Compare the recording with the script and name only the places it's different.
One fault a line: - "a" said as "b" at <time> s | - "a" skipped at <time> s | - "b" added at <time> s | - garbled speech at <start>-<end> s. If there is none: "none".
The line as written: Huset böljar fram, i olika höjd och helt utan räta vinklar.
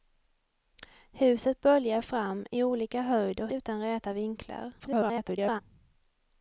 - "helt" skipped at 3.5 s
- garbled speech at 4.8-5.6 s